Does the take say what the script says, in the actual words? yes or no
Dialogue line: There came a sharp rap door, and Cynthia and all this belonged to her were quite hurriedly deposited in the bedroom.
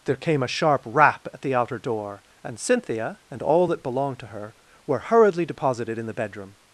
no